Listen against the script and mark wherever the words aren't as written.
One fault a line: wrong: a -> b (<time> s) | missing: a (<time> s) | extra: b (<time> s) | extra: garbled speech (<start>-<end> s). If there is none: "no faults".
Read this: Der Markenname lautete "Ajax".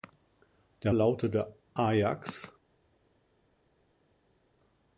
missing: Markenname (0.9 s)